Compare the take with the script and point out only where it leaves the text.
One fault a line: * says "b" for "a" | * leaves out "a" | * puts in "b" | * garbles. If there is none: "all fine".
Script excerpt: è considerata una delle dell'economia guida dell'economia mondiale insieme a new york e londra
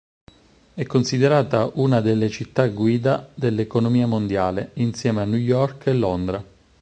* says "città" for "dell'economia"